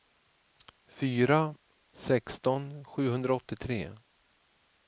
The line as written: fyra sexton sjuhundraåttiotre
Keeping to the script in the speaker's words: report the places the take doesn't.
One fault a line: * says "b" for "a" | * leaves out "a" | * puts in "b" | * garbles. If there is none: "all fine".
all fine